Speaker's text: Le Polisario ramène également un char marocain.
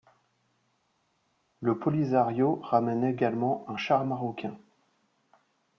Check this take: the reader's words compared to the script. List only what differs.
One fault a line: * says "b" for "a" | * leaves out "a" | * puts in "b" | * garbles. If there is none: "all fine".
all fine